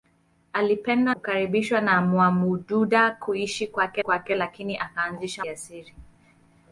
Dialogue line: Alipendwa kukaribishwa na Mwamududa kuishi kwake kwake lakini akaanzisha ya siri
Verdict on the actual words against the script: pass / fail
pass